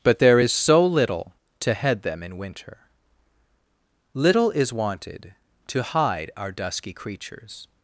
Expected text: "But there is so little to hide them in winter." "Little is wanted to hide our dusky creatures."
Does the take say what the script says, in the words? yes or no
no